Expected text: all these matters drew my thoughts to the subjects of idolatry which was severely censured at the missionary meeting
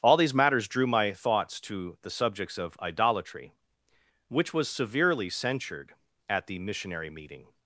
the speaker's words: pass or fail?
pass